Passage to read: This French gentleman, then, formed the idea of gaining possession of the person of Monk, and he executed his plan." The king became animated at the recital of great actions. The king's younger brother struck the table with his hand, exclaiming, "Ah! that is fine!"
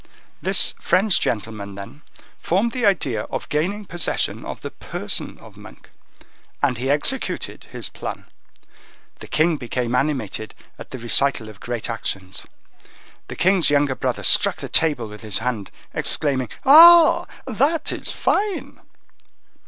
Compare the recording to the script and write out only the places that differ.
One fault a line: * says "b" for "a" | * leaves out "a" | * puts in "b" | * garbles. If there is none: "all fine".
all fine